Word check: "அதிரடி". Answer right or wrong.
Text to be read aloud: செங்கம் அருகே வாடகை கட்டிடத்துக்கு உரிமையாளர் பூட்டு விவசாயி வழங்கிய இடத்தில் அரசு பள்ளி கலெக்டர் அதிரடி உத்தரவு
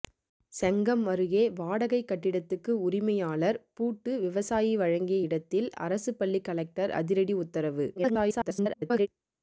right